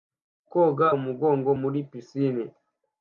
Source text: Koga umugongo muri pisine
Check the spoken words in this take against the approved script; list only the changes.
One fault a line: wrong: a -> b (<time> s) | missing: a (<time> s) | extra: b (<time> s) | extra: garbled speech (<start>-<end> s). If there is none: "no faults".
no faults